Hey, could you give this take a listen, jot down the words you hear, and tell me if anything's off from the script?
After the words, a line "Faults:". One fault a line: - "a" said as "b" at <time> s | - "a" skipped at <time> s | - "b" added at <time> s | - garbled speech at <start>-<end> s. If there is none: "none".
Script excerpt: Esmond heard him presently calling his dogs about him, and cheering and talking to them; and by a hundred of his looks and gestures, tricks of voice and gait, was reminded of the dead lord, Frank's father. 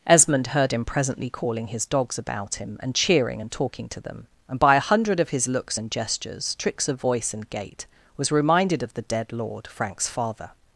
Esmond heard him presently calling his dogs about him, and cheering and talking to them; and by a hundred of his looks and gestures, tricks of voice and gait, was reminded of the dead lord, Frank's father.
Faults:
none